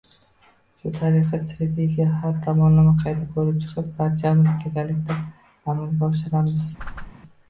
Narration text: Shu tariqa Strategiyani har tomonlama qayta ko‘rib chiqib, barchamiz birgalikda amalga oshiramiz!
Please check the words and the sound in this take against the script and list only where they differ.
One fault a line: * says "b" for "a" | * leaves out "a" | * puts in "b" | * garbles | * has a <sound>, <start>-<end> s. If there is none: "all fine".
* has a whoosh, 6.8-7.1 s